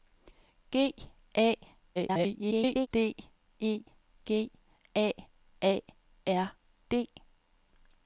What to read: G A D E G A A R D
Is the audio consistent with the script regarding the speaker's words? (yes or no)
no